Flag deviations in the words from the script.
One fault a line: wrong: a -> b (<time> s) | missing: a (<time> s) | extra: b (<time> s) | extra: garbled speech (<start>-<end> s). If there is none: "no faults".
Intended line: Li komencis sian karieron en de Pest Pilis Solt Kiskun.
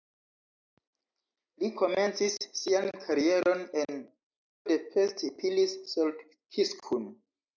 no faults